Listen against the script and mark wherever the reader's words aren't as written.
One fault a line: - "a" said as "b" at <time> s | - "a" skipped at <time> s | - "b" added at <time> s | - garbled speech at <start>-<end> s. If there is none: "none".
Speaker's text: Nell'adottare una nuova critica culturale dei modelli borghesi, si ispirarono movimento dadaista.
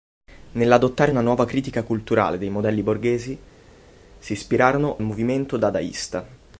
none